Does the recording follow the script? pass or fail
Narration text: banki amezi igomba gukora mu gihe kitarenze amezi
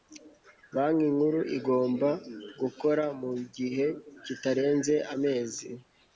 fail